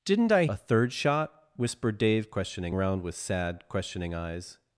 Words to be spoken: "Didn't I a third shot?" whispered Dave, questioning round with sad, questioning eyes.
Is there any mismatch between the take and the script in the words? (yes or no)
no